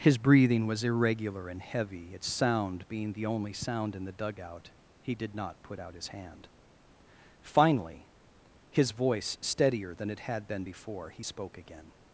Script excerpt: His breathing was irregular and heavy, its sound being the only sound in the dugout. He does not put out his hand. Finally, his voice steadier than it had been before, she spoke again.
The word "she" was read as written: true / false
false